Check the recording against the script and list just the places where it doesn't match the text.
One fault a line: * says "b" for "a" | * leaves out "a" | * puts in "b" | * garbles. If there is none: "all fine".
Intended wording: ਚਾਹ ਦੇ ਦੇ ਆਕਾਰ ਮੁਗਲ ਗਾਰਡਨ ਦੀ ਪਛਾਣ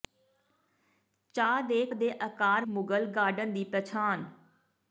all fine